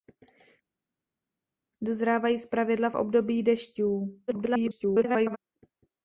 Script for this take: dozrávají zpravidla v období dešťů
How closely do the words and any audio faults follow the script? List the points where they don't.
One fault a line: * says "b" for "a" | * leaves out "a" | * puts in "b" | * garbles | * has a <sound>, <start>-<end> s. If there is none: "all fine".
* garbles